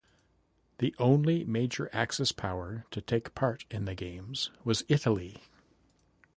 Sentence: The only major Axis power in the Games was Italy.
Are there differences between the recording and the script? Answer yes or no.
yes